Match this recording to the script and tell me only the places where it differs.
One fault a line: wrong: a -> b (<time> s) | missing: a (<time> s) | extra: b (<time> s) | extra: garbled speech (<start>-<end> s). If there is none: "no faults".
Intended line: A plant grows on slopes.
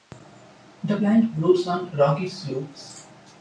wrong: A -> The (0.8 s)
extra: rocky (2.0 s)